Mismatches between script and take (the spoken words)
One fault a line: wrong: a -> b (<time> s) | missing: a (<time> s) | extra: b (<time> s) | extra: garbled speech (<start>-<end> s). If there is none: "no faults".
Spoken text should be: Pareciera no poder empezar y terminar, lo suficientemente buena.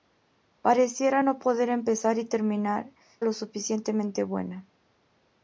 no faults